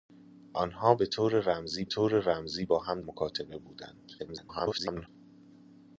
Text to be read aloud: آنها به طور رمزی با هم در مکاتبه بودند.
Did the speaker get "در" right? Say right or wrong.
wrong